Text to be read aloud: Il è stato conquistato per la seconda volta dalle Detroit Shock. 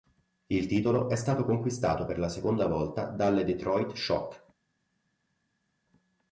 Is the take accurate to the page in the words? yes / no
no